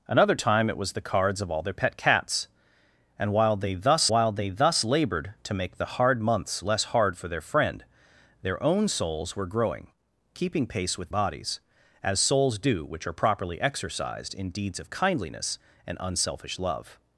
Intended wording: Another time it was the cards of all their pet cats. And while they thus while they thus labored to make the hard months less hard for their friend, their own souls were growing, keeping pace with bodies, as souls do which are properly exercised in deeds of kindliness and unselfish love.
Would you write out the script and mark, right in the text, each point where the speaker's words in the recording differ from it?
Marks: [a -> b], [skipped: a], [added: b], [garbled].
Another time it was the cards of all their pet cats. And while they thus while they thus labored to make the hard months less hard for their friend, their own souls were growing, keeping pace with bodies, as souls do which are properly exercised in deeds of kindliness and unselfish love.